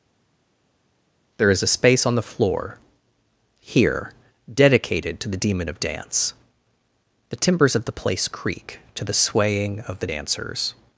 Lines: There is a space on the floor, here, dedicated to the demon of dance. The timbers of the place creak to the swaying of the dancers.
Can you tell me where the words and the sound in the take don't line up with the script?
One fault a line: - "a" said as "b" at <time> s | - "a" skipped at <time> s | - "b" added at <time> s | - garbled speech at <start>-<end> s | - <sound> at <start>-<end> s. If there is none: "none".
none